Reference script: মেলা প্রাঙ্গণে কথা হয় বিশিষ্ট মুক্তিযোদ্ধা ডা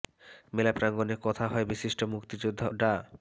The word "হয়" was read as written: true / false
true